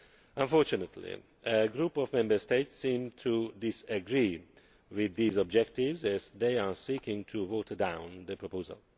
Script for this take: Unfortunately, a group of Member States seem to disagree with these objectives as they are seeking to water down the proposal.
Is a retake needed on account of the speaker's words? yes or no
no